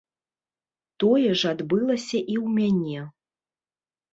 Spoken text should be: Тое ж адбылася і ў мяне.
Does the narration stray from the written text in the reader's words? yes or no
no